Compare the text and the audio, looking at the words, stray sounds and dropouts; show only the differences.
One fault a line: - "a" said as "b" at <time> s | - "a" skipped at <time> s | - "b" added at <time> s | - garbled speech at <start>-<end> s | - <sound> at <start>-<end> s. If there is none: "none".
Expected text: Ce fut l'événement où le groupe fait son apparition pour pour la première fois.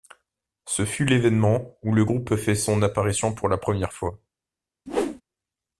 - "pour" skipped at 3.5 s
- whoosh at 4.9-5.2 s